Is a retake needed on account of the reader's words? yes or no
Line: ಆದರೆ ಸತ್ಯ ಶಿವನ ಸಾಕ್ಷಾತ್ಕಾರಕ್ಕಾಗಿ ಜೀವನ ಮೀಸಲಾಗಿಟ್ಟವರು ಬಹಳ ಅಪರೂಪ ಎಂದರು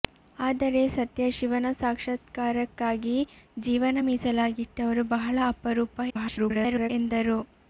yes